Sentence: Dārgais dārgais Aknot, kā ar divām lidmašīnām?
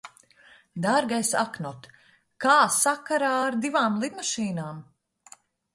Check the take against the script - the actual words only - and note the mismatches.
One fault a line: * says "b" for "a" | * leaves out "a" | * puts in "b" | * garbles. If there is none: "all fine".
* leaves out "dārgais"
* puts in "sakarā"